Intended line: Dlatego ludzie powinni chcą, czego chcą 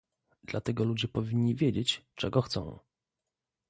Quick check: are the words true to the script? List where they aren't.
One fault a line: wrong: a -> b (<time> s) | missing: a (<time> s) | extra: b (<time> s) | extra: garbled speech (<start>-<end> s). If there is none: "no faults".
wrong: chcą -> wiedzieć (1.6 s)